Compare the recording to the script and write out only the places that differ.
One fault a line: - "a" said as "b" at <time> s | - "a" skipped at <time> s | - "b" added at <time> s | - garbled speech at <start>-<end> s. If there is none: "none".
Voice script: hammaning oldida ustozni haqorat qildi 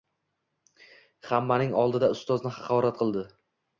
none